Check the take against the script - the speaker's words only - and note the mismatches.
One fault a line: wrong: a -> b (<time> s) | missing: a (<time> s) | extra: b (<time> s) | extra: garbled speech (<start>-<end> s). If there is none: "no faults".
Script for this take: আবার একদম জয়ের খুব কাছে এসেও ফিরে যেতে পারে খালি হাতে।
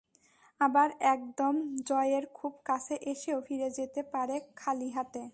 no faults